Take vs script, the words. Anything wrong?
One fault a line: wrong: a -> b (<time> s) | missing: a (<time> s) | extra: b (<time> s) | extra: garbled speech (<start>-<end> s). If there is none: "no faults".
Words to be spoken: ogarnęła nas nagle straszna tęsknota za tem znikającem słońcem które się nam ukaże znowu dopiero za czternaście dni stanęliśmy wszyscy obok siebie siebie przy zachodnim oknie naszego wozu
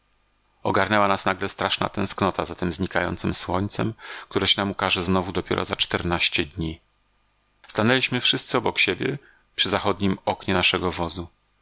missing: siebie (9.2 s)